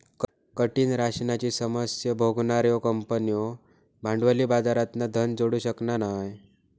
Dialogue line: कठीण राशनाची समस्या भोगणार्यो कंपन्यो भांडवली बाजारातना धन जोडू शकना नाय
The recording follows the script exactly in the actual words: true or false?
true